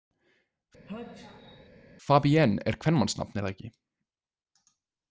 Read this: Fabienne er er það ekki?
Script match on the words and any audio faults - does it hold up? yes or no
no